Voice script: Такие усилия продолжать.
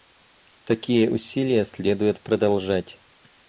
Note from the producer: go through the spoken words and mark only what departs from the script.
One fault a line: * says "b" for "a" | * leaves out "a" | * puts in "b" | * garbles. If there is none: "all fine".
* puts in "следует"